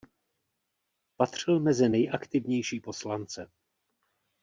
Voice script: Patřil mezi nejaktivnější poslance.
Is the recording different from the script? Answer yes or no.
no